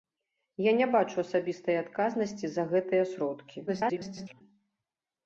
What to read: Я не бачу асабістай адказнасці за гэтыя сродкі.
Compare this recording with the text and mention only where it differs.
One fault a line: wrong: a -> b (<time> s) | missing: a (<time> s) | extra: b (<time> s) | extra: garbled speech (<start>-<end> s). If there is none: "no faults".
extra: garbled speech (3.7-4.4 s)